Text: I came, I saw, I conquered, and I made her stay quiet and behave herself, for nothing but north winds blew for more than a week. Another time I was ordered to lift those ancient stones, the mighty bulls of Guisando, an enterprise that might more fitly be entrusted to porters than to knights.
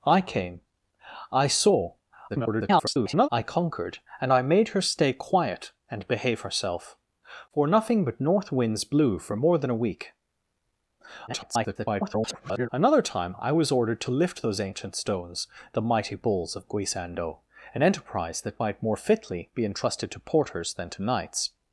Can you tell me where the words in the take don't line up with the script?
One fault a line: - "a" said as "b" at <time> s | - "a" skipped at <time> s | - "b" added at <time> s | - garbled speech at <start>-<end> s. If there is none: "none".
- garbled speech at 2.3-3.3 s
- garbled speech at 11.3-12.7 s